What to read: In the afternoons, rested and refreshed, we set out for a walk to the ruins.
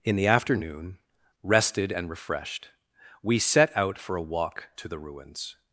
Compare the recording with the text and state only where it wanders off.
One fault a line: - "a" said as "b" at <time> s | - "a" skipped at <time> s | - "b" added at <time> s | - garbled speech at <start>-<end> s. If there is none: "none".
- "afternoons" said as "afternoon" at 0.2 s